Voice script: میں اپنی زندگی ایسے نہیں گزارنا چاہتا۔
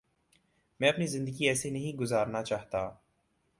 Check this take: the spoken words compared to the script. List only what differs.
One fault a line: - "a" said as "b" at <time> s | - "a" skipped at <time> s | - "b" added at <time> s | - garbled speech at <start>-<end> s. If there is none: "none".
none